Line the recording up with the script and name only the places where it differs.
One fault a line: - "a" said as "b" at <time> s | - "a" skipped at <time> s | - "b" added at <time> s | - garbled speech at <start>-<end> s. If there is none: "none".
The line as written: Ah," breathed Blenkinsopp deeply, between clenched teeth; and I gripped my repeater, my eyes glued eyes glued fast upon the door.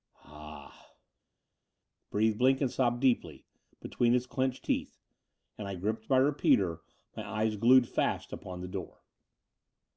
- "his" added at 4.1 s
- "eyes glued" skipped at 7.9 s